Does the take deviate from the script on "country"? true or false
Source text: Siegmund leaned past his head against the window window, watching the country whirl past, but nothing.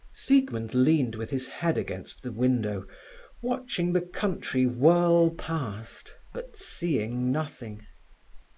false